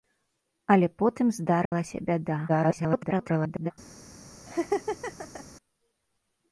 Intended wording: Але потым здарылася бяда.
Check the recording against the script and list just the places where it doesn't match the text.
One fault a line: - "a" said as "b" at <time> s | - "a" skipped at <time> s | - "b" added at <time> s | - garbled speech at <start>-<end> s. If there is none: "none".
- garbled speech at 2.5-3.7 s